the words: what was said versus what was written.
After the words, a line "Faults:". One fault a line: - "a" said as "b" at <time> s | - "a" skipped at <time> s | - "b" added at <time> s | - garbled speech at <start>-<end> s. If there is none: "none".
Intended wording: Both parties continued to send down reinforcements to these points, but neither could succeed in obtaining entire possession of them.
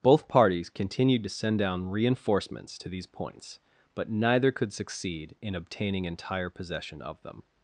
Both parties continued to send down reinforcements to these points, but neither could succeed in obtaining entire possession of them.
Faults:
none